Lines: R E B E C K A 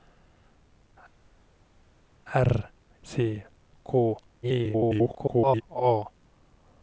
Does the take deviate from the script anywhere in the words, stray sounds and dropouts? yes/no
yes